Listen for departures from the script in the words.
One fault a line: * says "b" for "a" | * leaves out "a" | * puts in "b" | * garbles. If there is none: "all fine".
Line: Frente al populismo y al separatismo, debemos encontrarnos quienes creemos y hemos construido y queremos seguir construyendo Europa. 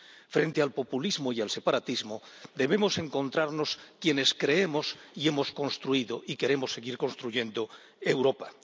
all fine